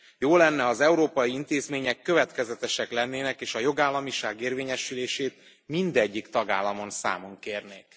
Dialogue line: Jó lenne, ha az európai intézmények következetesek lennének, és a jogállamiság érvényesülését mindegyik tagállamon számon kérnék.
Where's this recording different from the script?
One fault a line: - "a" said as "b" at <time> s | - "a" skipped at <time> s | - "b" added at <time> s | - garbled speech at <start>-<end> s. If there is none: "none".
none